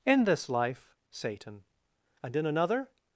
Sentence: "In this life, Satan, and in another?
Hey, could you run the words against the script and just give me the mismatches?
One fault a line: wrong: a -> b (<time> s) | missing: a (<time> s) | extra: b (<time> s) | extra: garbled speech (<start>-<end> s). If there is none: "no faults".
no faults